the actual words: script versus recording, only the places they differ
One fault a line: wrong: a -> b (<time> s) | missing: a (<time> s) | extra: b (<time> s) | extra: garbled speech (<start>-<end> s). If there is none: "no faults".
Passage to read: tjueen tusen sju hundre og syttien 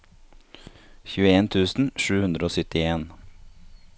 no faults